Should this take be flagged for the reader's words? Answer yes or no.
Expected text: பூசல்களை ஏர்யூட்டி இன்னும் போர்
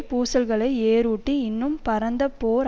yes